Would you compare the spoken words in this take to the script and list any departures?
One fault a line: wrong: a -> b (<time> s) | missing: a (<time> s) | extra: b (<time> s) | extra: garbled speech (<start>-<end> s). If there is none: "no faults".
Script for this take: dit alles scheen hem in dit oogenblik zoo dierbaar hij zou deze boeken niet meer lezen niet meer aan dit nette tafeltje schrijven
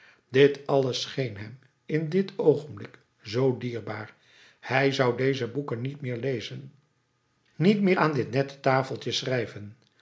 no faults